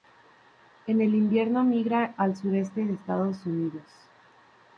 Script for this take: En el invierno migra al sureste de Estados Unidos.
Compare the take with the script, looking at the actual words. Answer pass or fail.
pass